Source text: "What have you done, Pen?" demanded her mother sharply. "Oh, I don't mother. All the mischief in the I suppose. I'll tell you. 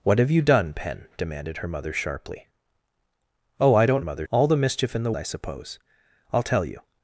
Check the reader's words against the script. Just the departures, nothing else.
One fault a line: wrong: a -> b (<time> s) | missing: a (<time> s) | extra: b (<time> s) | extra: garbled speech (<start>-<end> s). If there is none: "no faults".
no faults